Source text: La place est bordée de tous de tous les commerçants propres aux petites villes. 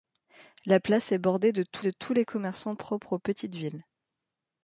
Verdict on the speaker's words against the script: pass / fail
pass